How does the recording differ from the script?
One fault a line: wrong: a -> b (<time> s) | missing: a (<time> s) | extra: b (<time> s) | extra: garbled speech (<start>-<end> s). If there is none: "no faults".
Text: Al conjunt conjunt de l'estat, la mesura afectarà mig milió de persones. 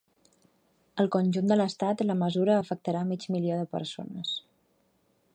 missing: conjunt (1.5 s)